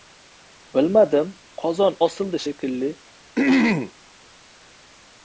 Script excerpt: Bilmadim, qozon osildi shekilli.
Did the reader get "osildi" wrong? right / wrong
right